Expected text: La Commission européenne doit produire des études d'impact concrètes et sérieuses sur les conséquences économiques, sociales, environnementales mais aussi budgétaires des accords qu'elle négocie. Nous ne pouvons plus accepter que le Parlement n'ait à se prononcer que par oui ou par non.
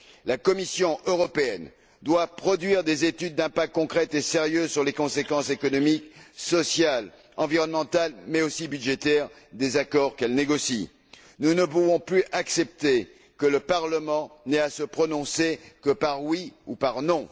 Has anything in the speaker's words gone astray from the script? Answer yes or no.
no